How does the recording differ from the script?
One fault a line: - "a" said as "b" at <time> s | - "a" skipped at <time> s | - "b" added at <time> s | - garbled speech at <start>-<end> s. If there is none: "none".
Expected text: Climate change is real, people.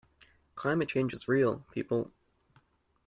none